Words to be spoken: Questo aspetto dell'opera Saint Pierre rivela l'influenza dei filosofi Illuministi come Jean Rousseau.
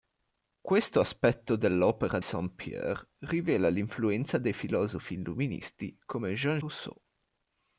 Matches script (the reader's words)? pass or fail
pass